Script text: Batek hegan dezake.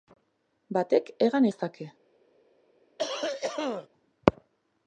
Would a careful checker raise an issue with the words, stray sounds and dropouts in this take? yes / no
yes